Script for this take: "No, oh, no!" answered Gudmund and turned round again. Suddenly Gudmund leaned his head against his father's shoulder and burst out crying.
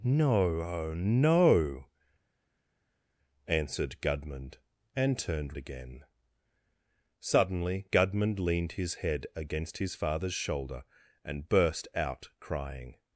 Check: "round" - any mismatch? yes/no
yes